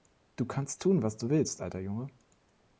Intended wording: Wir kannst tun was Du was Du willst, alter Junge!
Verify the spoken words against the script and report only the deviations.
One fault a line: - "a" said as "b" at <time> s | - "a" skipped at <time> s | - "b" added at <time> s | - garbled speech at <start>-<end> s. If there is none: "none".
- "Wir" said as "Du" at 0.3 s
- "was Du" skipped at 1.3 s